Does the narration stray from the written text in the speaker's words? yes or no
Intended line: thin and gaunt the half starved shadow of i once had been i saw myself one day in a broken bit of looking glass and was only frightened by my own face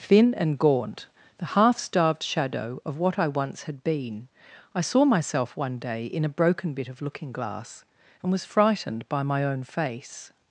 yes